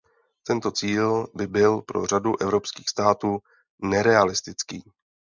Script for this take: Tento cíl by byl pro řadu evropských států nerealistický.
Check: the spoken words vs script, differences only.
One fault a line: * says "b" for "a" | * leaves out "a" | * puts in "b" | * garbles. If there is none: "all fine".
all fine